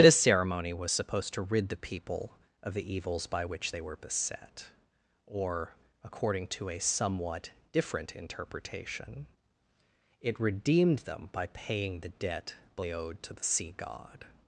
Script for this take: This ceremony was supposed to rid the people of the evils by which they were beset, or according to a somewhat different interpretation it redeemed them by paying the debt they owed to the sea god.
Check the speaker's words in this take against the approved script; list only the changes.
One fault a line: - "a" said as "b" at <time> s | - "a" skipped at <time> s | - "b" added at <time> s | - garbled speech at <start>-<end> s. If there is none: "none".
none